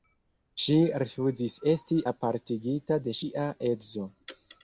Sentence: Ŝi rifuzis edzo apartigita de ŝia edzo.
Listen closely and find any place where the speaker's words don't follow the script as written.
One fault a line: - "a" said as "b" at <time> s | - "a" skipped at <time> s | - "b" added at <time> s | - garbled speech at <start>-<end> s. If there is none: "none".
- "edzo" said as "esti" at 1.8 s